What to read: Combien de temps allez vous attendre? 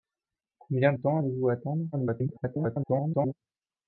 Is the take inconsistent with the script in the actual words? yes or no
yes